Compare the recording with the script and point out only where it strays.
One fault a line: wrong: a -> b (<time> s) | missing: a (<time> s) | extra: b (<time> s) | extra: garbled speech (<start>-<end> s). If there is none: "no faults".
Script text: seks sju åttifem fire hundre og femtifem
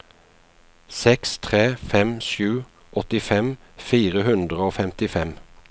extra: tre fem (1.5 s)